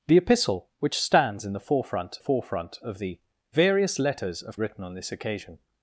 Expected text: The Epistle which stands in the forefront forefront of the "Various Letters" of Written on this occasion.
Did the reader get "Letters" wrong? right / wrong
right